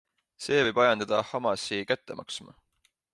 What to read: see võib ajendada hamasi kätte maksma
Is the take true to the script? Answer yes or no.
yes